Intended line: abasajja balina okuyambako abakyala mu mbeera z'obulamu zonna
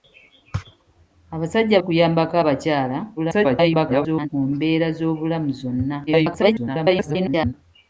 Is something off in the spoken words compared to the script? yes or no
yes